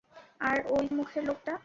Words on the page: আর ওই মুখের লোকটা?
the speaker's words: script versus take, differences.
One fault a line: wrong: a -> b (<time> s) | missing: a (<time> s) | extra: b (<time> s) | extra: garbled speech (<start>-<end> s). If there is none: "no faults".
no faults